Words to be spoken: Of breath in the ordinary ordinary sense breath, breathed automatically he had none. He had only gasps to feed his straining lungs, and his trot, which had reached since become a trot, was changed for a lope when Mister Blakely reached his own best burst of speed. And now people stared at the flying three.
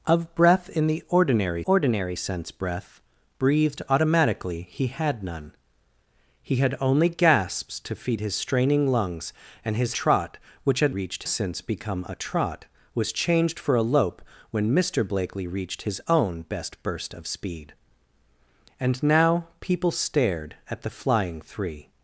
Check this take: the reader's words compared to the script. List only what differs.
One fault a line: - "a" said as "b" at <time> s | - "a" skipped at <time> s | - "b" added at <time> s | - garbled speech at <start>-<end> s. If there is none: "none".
none